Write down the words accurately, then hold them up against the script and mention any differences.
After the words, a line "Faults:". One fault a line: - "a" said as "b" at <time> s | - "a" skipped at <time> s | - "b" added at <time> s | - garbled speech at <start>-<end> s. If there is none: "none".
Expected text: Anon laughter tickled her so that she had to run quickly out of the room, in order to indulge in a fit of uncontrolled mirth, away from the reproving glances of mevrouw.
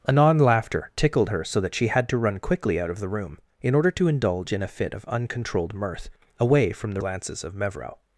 Anon laughter tickled her so that she had to run quickly out of the room, in order to indulge in a fit of uncontrolled mirth, away from the glances of mevrouw.
Faults:
- "reproving" skipped at 7.0 s